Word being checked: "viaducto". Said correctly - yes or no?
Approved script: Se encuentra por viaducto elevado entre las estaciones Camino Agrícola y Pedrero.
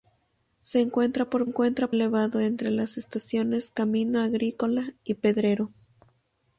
no